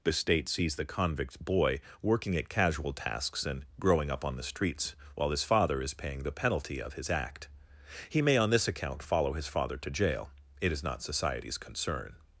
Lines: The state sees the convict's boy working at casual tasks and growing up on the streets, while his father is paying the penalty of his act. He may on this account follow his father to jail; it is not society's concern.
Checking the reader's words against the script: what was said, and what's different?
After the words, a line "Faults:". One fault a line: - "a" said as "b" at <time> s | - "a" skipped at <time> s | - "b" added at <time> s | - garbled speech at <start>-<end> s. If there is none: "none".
The state sees the convict's boy working at casual tasks and growing up on the streets, while his father is paying the penalty of his act. He may on this account follow his father to jail; it is not society's concern.
Faults:
none